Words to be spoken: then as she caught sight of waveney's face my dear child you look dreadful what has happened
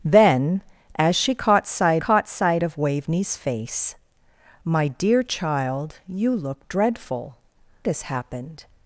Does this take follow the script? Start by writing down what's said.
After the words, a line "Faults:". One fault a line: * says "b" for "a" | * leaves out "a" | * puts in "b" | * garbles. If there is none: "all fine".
then as she caught sight caught sight of waveney's face my dear child you look dreadful has happened
Faults:
* puts in "caught sight"
* leaves out "what"